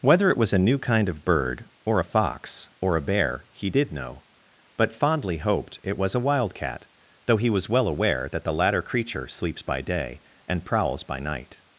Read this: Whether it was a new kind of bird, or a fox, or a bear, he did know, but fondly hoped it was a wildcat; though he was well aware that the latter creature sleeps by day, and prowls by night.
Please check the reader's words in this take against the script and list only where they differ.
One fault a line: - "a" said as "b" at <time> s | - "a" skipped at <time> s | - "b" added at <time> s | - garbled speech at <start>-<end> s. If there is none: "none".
none